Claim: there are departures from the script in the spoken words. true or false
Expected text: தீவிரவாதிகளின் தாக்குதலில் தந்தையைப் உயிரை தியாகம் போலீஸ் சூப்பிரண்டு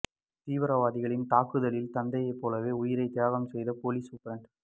true